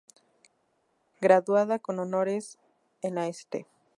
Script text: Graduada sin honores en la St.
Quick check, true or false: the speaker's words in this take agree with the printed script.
false